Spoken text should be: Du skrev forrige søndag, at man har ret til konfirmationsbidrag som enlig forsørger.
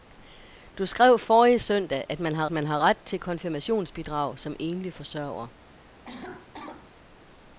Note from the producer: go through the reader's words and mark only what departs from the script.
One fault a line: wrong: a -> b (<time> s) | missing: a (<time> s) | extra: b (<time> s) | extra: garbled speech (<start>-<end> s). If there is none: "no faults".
extra: man har (2.5 s)